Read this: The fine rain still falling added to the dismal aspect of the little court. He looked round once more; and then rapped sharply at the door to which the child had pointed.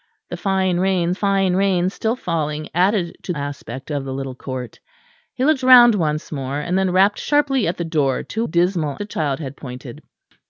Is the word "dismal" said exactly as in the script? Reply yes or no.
no